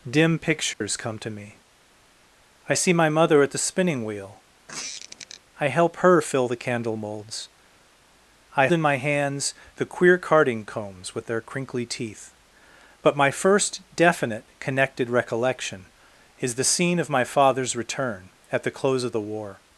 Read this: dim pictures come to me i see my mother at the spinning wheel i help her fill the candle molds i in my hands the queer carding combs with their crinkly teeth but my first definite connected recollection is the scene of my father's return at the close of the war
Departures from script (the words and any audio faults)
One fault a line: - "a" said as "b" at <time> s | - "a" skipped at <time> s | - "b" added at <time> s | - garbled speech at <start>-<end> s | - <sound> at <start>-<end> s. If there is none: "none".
- dropout at 0.7-0.8 s
- squeak at 4.7-5.4 s